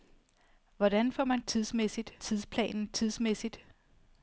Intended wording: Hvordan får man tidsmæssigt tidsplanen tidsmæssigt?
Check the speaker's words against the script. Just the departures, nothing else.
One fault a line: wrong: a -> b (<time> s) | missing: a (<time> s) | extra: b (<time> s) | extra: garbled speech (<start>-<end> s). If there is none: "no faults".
no faults